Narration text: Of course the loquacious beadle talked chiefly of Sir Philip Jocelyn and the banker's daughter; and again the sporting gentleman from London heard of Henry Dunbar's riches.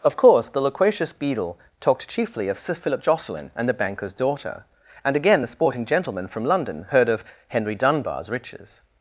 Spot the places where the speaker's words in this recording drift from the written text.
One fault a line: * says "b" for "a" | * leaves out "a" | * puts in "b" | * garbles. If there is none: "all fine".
all fine